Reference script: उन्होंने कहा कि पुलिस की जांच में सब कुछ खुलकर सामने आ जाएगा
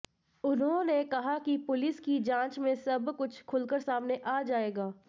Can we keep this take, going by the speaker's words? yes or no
yes